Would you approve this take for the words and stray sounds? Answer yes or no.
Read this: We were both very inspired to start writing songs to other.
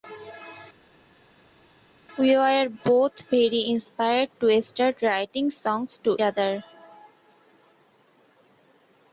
yes